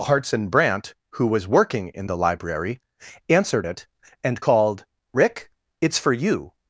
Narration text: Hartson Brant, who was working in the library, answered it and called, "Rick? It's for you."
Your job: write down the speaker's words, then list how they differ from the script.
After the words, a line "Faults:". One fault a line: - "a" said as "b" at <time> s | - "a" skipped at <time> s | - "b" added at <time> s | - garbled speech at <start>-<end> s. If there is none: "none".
Hartson Brant, who was working in the library, answered it and called, "Rick? It's for you."
Faults:
none